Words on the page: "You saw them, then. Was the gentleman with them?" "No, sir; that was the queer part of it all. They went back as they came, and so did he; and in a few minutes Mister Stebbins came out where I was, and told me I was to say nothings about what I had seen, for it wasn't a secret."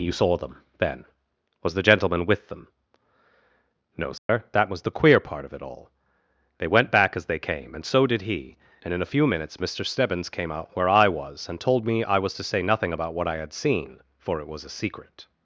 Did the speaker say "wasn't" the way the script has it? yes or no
no